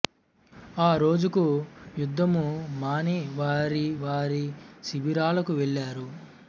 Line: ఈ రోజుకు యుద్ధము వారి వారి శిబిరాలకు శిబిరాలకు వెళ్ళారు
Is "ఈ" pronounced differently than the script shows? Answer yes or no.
yes